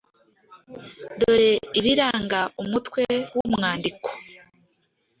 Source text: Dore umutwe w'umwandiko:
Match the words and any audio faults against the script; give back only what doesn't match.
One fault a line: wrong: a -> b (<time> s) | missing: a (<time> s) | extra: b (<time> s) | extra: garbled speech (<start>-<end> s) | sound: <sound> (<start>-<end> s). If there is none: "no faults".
extra: ibiranga (1.8 s)
sound: dropout (3.4-3.4 s)